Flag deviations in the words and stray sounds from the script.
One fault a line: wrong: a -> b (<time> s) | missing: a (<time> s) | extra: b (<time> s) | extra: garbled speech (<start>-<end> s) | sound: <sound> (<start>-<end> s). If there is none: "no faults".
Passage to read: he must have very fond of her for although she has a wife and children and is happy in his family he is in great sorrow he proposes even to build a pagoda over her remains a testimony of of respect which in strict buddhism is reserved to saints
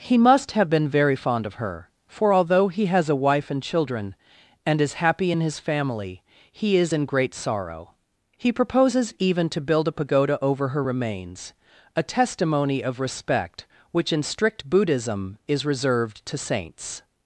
extra: been (0.7 s)
wrong: she -> he (2.7 s)
missing: of (13.0 s)